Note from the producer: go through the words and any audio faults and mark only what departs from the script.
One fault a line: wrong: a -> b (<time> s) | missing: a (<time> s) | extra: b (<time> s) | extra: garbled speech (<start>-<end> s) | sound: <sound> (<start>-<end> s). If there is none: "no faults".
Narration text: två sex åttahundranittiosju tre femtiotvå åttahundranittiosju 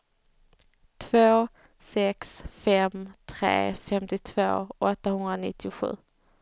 wrong: åttahundranittiosju -> fem (2.5 s)